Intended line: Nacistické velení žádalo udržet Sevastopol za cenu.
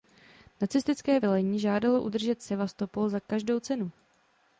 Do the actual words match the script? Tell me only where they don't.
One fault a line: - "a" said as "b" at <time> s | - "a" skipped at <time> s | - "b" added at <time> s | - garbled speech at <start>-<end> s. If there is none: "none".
- "každou" added at 3.2 s